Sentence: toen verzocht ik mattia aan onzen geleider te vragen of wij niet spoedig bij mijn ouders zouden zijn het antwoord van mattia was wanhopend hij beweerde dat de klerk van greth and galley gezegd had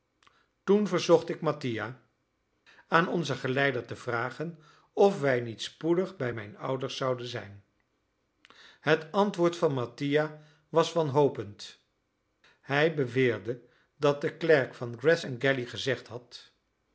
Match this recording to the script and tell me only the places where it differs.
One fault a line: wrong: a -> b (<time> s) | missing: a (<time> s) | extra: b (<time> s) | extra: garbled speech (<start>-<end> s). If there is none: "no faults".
no faults